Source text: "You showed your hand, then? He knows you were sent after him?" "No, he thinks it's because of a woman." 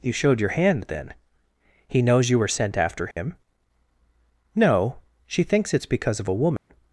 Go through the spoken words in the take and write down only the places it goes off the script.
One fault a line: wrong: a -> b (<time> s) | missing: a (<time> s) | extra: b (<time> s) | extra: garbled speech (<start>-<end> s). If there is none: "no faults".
wrong: he -> she (5.3 s)